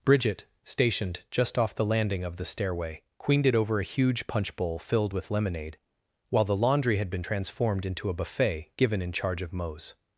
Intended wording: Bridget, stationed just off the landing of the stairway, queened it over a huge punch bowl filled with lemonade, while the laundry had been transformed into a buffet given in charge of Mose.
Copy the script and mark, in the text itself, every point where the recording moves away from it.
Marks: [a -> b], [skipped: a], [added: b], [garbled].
Bridget, stationed just off the landing of the stairway, queened it over a huge punch bowl filled with lemonade, while the laundry had been transformed into a buffet given in charge of Mose.